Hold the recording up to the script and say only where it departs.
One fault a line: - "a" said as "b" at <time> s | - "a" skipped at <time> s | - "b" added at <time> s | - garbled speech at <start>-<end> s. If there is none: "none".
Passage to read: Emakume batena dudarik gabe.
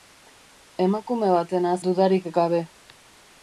none